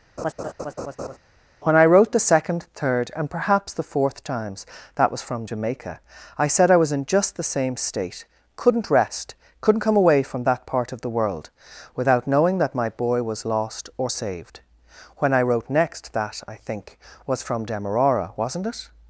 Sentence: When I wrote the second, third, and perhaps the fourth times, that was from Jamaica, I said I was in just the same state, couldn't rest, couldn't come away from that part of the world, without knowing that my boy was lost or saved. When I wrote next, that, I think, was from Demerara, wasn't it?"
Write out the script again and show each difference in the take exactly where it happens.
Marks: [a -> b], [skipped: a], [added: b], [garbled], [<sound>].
[laugh] When I wrote the second, third, and perhaps the fourth times, that was from Jamaica, I said I was in just the same state, couldn't rest, couldn't come away from that part of the world, without knowing that my boy was lost or saved. When I wrote next, that, I think, was from Demerara, wasn't it?"